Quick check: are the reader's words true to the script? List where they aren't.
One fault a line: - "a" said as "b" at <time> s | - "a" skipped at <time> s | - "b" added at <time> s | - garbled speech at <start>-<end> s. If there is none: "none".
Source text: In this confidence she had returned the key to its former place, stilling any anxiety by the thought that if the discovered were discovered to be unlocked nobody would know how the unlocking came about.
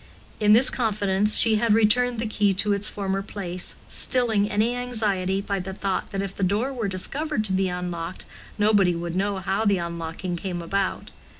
- "discovered" said as "door" at 6.4 s